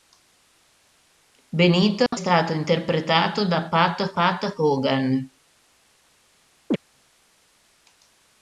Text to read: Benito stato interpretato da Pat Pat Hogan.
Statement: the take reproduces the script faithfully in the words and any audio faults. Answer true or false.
false